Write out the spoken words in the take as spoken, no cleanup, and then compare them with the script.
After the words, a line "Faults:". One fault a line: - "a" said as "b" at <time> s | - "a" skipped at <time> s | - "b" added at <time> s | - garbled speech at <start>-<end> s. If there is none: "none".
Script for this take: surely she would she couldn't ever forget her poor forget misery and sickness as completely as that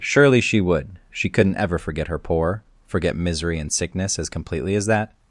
surely she would she couldn't ever forget her poor forget misery and sickness as completely as that
Faults:
none